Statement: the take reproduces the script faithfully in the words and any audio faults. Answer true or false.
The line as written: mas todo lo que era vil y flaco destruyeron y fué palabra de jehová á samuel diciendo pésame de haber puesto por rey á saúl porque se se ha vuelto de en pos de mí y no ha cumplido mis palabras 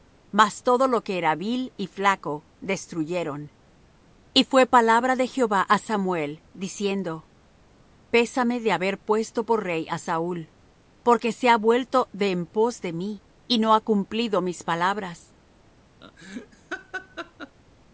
false